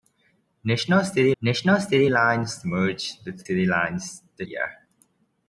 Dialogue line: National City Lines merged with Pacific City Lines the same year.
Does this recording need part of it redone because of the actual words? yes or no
yes